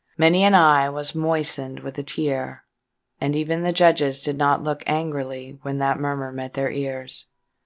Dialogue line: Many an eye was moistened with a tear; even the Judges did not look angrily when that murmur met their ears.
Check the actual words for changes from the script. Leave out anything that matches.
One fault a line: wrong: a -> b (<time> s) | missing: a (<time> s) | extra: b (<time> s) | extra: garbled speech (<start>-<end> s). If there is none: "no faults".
extra: and (3.2 s)